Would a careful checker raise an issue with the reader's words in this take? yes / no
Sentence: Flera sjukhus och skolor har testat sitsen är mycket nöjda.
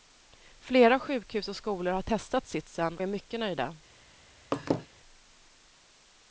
no